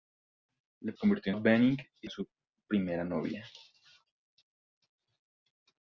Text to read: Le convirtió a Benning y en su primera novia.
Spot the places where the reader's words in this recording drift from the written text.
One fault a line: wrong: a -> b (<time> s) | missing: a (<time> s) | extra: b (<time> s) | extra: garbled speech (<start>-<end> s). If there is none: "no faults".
no faults